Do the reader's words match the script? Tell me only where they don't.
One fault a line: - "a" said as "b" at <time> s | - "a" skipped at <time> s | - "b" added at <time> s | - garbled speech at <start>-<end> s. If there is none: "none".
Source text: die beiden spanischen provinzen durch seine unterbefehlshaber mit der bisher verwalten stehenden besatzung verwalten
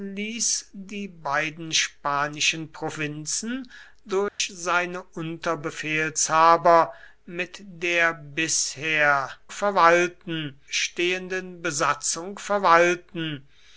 none